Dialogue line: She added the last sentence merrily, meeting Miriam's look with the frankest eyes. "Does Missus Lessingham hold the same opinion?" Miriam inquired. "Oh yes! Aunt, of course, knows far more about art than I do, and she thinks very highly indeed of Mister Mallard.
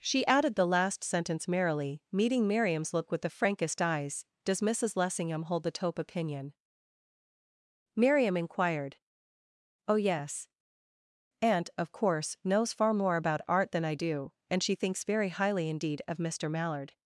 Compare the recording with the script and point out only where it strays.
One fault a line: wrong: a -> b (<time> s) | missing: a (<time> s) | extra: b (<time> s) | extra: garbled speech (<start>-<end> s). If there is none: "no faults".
wrong: same -> taupe (5.7 s)